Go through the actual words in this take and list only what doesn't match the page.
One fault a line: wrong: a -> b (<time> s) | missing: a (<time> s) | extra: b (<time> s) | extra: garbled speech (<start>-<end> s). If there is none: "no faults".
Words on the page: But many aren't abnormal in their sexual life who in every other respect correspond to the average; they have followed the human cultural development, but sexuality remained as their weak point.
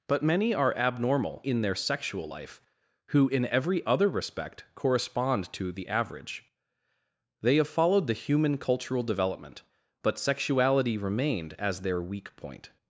wrong: aren't -> are (0.5 s)